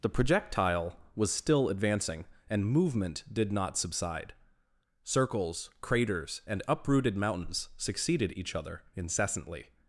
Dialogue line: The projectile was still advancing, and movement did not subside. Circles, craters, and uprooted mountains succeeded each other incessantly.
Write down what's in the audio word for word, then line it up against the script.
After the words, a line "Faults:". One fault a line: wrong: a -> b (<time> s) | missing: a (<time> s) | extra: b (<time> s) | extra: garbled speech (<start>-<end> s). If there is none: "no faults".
The projectile was still advancing, and movement did not subside. Circles, craters, and uprooted mountains succeeded each other incessantly.
Faults:
no faults